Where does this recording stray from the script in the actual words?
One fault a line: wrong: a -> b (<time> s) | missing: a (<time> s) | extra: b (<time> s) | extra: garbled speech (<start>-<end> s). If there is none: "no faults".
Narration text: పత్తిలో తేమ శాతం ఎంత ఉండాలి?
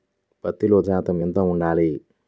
missing: తేమ (0.8 s)